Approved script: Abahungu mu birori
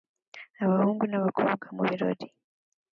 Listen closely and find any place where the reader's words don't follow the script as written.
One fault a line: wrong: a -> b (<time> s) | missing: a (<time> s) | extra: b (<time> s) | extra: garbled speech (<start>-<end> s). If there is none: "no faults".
extra: n'abakobwa (1.1 s)